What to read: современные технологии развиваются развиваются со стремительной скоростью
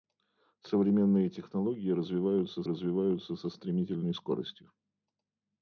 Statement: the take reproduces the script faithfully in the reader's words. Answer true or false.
true